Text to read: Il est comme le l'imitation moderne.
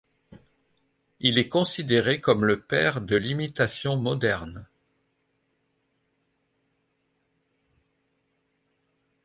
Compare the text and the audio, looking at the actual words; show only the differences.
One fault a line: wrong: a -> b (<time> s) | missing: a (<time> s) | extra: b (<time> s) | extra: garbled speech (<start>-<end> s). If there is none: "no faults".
extra: considéré (1.5 s)
extra: père de (2.6 s)